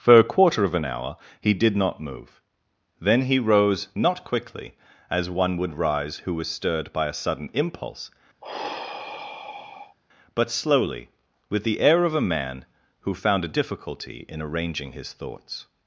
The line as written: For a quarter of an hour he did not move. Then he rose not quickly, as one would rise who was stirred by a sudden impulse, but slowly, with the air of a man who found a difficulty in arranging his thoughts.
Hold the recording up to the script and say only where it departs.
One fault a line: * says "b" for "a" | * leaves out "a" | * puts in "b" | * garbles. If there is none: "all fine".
all fine